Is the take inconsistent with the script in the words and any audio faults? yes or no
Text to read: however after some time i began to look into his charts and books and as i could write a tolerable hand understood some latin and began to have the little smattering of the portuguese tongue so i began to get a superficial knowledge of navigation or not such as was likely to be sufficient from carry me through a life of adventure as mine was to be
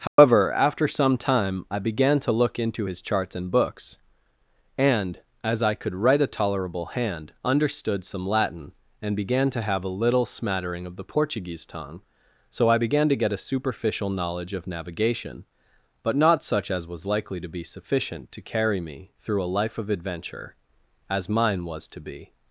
yes